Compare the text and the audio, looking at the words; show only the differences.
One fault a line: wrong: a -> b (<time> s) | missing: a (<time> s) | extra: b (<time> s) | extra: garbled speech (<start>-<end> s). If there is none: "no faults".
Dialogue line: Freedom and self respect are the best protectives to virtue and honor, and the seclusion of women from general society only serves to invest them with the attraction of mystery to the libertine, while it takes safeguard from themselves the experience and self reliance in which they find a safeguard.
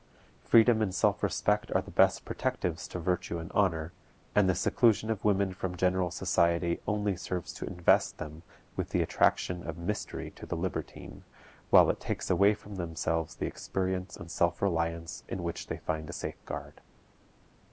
wrong: safeguard -> away (12.3 s)